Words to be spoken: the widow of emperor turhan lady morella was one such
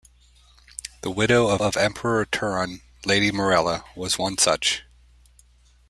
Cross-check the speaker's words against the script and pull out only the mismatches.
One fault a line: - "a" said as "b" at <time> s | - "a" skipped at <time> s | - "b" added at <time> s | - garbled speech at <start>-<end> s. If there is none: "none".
- "of" added at 1.6 s